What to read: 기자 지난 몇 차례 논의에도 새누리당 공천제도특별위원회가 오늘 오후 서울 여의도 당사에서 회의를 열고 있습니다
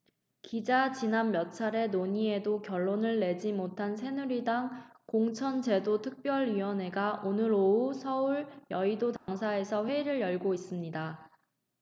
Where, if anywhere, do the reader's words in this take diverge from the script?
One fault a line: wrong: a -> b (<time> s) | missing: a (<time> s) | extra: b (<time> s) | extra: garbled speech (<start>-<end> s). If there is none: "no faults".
extra: 결론을 내지 못한 (2.6 s)